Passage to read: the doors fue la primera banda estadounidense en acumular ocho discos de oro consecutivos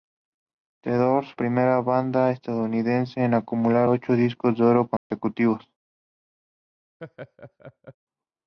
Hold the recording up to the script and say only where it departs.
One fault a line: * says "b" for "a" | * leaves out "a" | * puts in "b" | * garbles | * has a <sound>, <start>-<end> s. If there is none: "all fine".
* leaves out "fue la"
* has a dropout, 5.0-5.1 s
* has a laugh, 7.0-7.9 s